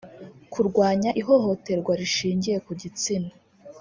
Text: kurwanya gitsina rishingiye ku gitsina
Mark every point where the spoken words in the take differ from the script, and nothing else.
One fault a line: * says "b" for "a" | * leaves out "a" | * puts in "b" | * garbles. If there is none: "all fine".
* says "ihohoterwa" for "gitsina"